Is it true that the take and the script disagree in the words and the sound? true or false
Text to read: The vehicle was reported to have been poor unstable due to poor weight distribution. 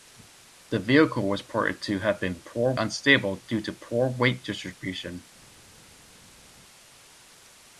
false